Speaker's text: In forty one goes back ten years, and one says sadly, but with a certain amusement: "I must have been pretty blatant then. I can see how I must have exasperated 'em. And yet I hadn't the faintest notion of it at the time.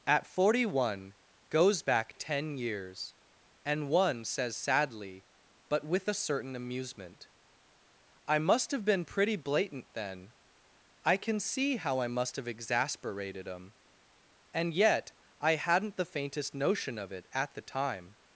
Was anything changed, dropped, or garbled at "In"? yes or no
yes